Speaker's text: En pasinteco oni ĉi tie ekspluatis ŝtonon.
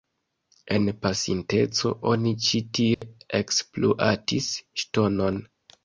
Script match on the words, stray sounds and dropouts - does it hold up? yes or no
no